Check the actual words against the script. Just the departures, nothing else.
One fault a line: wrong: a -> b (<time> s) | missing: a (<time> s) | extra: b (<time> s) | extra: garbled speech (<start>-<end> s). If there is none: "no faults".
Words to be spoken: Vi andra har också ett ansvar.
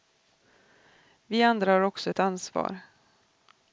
no faults